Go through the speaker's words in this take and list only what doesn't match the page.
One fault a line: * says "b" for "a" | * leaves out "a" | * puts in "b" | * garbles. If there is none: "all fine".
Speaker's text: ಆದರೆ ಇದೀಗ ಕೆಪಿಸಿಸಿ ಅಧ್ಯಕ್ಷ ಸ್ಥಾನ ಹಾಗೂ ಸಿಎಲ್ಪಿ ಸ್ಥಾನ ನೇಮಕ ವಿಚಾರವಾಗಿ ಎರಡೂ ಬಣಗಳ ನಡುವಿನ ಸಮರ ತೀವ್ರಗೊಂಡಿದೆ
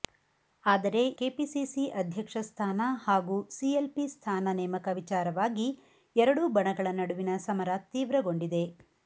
* leaves out "ಇದೀಗ"